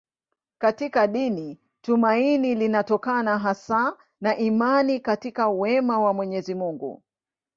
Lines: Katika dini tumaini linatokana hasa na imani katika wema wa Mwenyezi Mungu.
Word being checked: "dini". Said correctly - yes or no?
yes